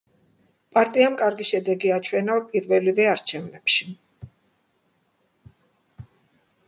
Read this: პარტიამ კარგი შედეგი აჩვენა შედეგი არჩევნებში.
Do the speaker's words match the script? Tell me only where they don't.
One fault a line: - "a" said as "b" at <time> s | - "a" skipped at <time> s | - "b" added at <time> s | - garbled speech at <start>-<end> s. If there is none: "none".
- "შედეგი" said as "პირველივე" at 2.5 s